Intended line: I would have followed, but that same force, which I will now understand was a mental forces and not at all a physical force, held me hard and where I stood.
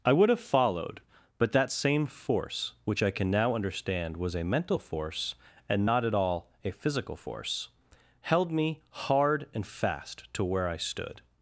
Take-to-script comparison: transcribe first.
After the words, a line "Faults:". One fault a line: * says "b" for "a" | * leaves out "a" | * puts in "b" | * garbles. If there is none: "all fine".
I would have followed, but that same force, which I can now understand was a mental force and not at all a physical force, held me hard and fast to where I stood.
Faults:
* says "can" for "will"
* says "force" for "forces"
* puts in "fast to"